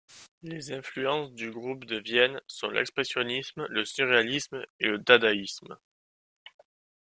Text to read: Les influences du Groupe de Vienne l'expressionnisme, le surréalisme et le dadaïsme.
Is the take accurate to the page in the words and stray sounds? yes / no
no